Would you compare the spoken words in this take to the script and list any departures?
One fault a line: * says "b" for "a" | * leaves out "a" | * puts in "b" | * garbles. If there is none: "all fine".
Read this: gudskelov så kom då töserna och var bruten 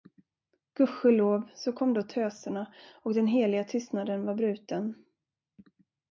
* puts in "den heliga tystnaden"